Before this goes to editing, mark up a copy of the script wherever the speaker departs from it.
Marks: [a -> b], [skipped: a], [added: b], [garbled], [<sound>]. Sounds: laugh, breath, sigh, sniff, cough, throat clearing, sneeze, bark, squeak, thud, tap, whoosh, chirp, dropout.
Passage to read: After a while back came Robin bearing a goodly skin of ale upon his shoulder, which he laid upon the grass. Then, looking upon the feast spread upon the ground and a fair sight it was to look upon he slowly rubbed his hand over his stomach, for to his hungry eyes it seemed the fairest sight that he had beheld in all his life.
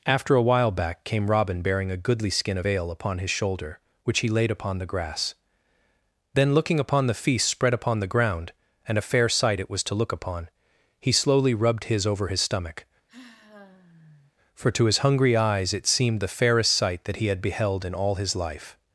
After a while back came Robin bearing a goodly skin of ale upon his shoulder, which he laid upon the grass. Then, looking upon the feast spread upon the ground and a fair sight it was to look upon he slowly rubbed his [skipped: hand] over his stomach, [sigh] for to his hungry eyes it seemed the fairest sight that he had beheld in all his life.